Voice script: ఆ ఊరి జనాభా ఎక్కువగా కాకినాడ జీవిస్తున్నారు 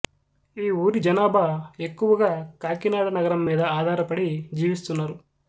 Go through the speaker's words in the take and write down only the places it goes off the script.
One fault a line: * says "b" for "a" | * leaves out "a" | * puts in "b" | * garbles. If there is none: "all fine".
* says "ఈ" for "ఆ"
* puts in "నగరం మీద ఆధారపడి"